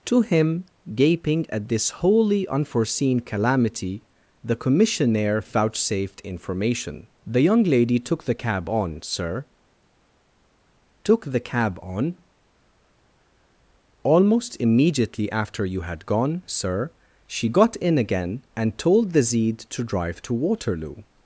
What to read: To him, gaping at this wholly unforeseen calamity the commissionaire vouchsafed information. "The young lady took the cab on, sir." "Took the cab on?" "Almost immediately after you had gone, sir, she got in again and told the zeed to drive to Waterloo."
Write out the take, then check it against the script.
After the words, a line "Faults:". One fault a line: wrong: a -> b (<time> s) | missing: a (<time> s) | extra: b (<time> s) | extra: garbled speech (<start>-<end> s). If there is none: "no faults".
To him, gaping at this wholly unforeseen calamity the commissionaire vouchsafed information. "The young lady took the cab on, sir." "Took the cab on?" "Almost immediately after you had gone, sir, she got in again and told the zeed to drive to Waterloo."
Faults:
no faults